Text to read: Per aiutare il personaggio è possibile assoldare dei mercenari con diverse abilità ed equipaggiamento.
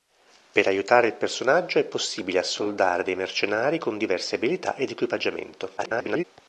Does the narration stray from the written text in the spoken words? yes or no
yes